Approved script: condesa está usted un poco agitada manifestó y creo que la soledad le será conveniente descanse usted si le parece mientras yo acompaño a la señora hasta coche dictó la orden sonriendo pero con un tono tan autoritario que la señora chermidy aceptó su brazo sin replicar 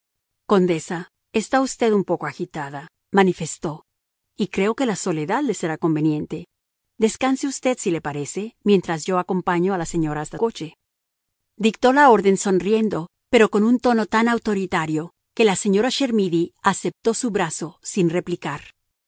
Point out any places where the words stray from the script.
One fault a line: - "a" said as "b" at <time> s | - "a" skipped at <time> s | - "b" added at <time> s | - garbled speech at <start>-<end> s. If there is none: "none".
none